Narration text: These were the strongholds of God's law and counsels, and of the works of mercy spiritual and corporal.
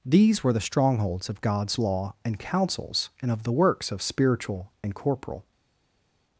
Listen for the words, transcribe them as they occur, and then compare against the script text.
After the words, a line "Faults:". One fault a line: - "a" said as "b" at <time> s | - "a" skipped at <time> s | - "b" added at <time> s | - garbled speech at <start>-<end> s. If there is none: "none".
These were the strongholds of God's law and counsels, and of the works of spiritual and corporal.
Faults:
- "mercy" skipped at 4.0 s